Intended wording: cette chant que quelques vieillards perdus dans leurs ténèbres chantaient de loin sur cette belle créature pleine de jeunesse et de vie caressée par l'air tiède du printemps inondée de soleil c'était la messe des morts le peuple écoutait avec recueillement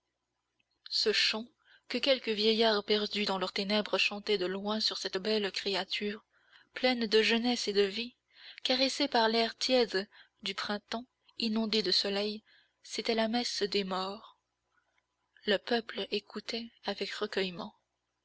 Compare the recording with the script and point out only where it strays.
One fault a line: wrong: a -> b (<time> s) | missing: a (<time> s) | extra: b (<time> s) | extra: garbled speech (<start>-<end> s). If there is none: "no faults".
wrong: cette -> ce (0.9 s)